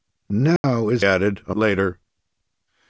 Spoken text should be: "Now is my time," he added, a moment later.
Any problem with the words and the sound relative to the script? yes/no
yes